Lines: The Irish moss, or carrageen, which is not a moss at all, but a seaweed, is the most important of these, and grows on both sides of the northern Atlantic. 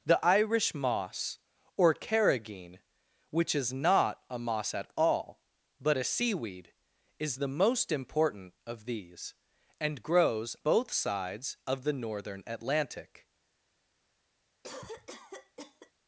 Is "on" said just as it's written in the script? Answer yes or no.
no